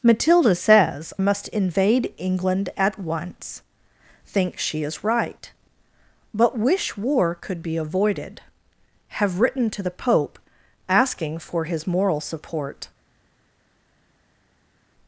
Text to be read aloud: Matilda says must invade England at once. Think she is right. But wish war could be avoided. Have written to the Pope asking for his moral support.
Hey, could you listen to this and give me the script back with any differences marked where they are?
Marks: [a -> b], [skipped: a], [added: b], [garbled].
Matilda says must invade England at once. Think she is right. But wish war could be avoided. Have written to the Pope asking for his moral support.